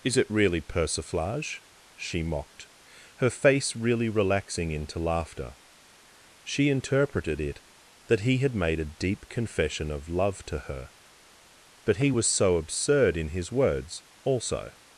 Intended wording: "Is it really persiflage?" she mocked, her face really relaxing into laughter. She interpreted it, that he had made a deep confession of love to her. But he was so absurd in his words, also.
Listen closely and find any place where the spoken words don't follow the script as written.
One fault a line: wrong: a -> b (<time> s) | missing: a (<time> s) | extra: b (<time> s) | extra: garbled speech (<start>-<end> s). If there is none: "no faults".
no faults